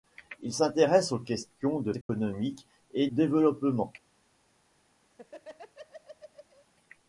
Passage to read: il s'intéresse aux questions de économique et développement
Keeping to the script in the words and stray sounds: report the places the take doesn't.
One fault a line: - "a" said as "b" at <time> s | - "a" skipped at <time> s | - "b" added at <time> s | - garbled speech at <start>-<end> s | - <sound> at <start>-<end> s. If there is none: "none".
- dropout at 2.0-2.1 s
- laugh at 5.1-6.7 s